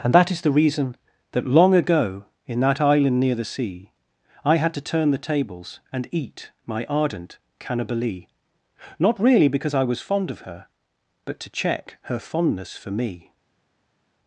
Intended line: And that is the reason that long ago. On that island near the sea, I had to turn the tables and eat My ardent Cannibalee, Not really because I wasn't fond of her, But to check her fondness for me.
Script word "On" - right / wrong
wrong